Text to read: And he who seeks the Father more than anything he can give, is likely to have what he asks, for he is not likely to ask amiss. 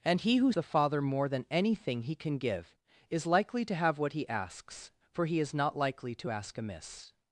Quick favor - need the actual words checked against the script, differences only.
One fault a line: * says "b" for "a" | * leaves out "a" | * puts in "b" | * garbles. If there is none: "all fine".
* leaves out "seeks"